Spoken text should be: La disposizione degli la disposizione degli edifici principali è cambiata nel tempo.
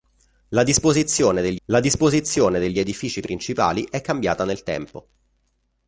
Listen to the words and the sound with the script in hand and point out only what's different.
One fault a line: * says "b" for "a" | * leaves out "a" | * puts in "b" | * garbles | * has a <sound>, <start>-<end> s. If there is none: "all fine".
all fine